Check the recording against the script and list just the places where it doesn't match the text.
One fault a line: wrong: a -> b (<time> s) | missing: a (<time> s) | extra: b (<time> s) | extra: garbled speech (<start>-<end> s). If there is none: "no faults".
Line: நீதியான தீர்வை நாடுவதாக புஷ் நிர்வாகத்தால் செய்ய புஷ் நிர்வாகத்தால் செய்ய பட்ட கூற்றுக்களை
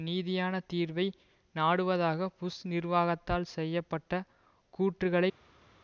missing: புஷ் நிர்வாகத்தால் செய்ய (3.8 s)